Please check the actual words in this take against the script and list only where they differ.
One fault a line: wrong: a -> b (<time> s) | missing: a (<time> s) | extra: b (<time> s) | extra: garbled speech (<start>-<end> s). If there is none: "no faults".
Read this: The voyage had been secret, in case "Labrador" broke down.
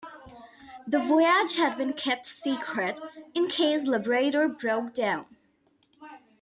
extra: kept (1.9 s)